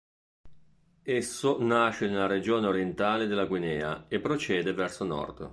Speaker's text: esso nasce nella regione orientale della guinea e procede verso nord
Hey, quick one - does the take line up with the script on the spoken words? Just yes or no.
yes